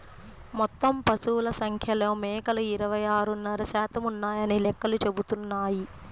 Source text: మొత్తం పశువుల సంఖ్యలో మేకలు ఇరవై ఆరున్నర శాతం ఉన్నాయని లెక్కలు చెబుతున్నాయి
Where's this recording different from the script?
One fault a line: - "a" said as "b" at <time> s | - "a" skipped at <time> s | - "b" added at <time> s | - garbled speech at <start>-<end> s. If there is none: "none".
none